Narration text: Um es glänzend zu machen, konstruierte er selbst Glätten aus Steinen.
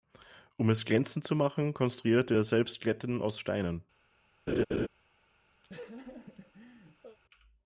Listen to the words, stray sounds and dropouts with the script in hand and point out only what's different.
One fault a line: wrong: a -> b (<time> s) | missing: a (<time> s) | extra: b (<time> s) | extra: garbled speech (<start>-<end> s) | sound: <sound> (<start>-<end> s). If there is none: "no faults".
sound: laugh (4.5-4.9 s)
sound: laugh (5.6-7.2 s)